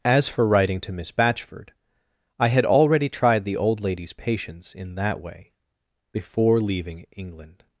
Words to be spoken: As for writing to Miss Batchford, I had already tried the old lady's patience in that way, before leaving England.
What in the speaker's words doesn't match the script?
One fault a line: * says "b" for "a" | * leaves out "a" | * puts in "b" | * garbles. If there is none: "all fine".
all fine